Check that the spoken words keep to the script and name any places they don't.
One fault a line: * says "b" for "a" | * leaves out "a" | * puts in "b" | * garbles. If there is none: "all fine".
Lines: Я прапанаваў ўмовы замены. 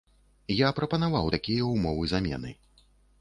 * puts in "такія"